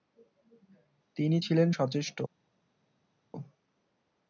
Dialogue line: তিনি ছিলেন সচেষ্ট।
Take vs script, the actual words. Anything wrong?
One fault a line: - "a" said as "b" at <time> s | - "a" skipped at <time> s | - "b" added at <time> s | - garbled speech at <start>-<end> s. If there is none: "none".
none